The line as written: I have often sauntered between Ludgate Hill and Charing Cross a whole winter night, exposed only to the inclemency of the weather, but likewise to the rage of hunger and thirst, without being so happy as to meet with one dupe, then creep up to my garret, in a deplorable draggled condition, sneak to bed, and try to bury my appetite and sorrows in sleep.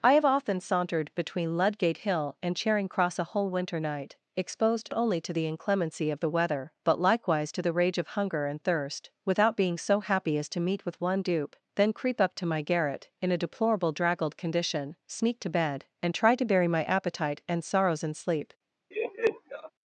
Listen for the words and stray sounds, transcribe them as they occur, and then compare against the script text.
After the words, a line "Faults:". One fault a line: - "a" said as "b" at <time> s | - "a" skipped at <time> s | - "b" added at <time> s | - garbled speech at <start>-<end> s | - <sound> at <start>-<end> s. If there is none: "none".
I have often sauntered between Ludgate Hill and Charing Cross a whole winter night, exposed only to the inclemency of the weather, but likewise to the rage of hunger and thirst, without being so happy as to meet with one dupe, then creep up to my garret, in a deplorable draggled condition, sneak to bed, and try to bury my appetite and sorrows in sleep.
Faults:
- laugh at 18.9-19.7 s